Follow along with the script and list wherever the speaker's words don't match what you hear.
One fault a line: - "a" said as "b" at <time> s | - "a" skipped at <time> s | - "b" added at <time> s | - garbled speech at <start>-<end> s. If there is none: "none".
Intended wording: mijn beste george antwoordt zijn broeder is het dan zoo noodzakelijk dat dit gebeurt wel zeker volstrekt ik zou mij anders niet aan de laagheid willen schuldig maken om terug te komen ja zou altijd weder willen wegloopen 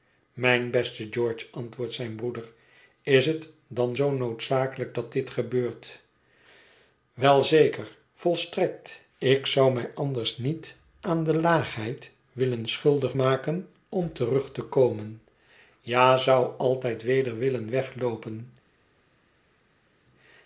none